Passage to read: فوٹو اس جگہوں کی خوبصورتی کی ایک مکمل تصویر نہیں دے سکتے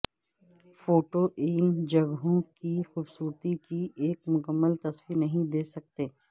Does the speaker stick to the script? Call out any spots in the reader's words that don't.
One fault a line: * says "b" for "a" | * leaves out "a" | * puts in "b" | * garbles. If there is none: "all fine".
* says "ان" for "اس"